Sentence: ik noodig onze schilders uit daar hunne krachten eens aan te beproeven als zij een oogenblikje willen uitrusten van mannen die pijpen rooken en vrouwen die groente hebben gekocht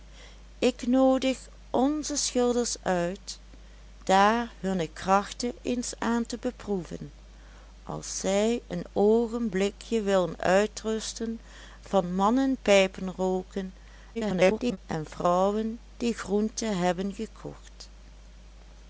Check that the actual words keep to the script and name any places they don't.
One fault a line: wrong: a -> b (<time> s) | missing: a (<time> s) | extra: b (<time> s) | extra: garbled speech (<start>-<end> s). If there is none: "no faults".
missing: die (12.5 s)
extra: garbled speech (14.1-14.8 s)